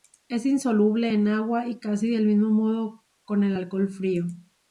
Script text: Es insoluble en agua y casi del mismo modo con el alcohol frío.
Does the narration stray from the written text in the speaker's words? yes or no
no